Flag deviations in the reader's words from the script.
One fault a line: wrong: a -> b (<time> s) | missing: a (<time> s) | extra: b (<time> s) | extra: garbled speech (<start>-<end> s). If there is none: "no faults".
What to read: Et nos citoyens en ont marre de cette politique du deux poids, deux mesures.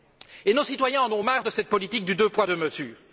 no faults